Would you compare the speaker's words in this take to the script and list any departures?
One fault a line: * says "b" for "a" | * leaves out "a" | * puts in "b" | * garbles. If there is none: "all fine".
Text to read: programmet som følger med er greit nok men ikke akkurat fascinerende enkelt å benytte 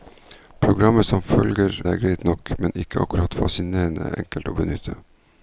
* leaves out "med"